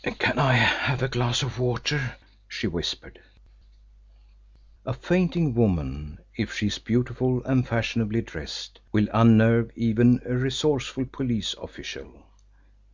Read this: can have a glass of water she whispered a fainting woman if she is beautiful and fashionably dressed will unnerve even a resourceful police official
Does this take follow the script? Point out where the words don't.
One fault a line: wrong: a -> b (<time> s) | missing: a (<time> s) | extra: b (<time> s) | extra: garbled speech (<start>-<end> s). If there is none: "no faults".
extra: i (0.4 s)